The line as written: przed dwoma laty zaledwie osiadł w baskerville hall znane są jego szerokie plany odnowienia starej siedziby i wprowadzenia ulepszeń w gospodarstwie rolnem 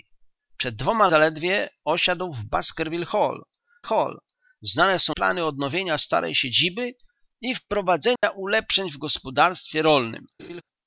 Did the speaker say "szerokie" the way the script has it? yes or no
no